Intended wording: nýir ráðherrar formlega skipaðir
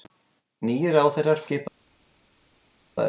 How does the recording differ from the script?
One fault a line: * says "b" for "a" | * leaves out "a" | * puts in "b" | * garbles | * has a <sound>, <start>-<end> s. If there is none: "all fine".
* leaves out "formlega"